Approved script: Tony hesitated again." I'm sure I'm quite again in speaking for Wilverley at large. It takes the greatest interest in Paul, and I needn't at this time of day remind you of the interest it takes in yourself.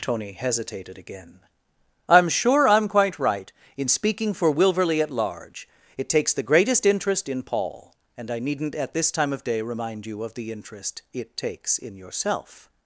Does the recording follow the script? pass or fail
fail